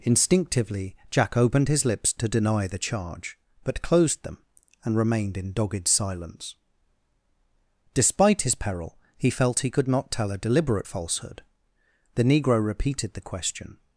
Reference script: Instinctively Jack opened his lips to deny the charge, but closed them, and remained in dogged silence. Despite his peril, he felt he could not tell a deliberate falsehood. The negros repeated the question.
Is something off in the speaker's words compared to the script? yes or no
yes